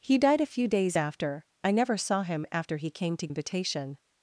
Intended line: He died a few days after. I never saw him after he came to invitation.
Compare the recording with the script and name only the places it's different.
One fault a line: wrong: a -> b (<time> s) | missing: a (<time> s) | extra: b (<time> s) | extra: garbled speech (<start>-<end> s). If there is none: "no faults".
no faults